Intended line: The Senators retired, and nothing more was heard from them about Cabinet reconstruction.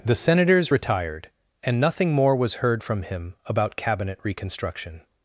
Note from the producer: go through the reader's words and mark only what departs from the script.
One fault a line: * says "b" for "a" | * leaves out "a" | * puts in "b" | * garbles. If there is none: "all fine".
* says "him" for "them"